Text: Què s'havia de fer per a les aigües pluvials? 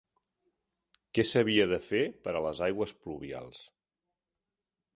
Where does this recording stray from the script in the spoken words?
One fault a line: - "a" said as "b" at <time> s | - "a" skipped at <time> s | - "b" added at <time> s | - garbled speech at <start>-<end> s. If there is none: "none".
none